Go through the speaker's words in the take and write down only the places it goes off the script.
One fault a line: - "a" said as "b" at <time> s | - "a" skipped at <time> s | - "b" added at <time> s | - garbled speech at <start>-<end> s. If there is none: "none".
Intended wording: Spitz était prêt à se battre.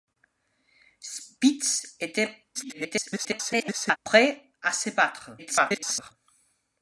- garbled speech at 2.5-4.0 s
- garbled speech at 5.4-6.1 s